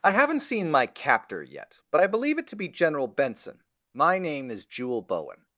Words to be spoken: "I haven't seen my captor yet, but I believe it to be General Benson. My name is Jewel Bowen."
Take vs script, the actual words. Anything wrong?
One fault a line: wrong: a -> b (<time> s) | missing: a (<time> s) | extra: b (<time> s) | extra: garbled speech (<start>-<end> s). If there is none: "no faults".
no faults